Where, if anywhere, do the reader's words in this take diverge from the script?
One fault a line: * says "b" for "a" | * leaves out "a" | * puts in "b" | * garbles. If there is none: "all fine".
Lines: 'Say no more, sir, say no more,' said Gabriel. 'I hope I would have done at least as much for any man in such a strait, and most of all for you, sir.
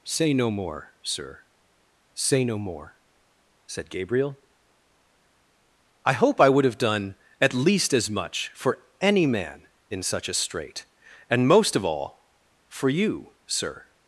all fine